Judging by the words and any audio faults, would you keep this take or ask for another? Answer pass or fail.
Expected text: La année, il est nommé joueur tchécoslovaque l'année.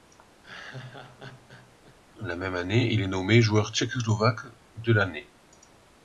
fail